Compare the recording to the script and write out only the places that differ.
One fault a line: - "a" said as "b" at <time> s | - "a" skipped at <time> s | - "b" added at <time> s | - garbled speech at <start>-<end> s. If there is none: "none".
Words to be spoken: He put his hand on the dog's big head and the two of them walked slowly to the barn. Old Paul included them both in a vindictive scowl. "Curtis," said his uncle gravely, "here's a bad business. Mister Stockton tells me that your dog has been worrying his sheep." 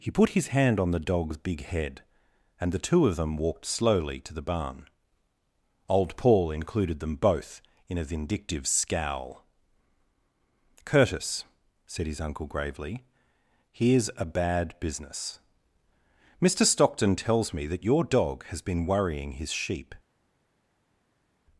none